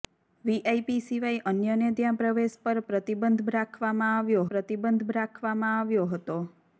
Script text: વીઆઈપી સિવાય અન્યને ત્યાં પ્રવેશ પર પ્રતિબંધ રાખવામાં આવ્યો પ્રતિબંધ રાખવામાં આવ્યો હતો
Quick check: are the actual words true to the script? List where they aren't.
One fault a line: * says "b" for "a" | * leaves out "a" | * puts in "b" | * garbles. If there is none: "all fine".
all fine